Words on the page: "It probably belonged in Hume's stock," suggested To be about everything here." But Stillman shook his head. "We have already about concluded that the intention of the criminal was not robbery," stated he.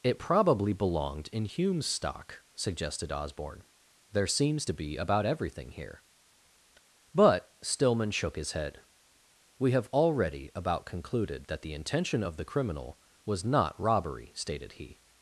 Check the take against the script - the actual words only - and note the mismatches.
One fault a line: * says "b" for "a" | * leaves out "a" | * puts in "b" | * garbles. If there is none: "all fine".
* puts in "Osborne There seems"